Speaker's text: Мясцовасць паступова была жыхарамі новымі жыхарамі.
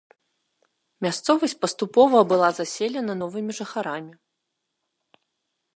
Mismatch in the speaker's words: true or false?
true